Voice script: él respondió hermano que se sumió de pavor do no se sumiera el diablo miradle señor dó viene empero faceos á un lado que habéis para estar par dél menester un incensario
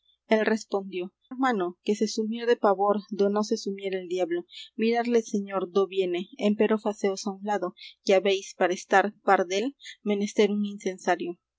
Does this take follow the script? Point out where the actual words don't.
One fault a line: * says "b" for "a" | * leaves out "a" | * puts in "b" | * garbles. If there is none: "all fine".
all fine